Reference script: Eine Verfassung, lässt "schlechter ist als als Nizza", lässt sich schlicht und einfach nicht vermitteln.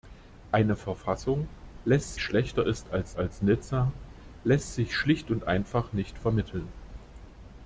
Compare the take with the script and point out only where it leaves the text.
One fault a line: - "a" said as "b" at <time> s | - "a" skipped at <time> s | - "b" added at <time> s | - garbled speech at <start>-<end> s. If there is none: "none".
none